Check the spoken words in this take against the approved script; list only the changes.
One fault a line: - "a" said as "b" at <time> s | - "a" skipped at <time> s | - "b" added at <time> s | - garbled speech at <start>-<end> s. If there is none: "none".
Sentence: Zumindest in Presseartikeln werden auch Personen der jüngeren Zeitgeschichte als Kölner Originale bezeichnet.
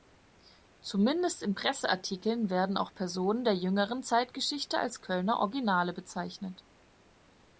none